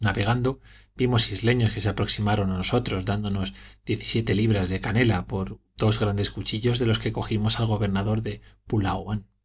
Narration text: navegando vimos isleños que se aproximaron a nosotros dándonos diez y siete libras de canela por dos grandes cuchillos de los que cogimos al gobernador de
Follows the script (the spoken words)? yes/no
yes